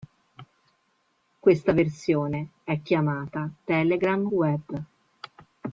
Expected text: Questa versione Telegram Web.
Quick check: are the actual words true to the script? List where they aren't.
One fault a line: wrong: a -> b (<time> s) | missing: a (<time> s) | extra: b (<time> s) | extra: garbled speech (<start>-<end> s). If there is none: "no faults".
extra: è chiamata (2.6 s)